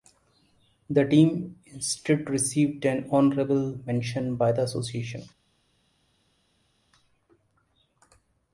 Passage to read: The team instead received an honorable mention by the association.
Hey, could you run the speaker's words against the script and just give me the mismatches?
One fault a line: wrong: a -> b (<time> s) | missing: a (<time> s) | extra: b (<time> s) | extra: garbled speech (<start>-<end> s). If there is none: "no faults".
no faults